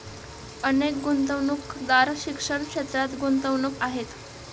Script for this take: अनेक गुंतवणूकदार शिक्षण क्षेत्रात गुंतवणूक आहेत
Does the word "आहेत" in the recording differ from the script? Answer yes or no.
no